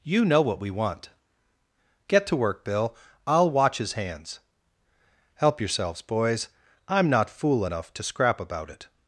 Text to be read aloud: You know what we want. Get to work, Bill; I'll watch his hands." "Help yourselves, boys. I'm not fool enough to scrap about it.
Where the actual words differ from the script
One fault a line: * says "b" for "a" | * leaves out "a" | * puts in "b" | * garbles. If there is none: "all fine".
all fine